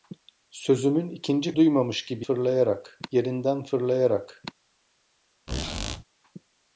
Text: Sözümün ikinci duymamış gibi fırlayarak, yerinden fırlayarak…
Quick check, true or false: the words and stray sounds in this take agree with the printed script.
false